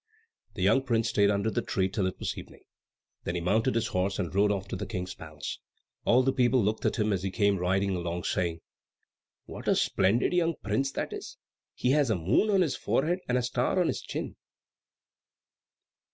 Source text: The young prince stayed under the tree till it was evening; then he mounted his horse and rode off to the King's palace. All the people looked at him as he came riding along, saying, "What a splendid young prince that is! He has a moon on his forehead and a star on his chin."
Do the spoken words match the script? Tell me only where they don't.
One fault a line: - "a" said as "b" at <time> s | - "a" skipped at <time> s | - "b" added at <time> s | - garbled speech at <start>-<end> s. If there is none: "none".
none